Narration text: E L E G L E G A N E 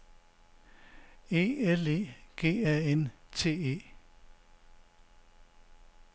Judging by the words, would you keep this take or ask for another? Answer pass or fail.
fail